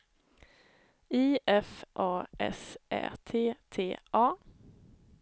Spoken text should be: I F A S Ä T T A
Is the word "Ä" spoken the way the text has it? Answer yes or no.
yes